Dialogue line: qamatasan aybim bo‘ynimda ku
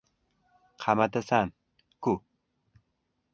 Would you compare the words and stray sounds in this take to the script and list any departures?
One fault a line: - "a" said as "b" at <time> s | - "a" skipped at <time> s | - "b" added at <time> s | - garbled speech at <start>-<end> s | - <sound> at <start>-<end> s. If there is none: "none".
- "aybim bo‘ynimda" skipped at 1.5 s